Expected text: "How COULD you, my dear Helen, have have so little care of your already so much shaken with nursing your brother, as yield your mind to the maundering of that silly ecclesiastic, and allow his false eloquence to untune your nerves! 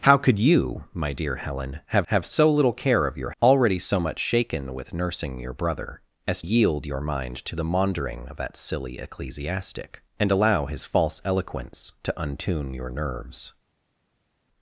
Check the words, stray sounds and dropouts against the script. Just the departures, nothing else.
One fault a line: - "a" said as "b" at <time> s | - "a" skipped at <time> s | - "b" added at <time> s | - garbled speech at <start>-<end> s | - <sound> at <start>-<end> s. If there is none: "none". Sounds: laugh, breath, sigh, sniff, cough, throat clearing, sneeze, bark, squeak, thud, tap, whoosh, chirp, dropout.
none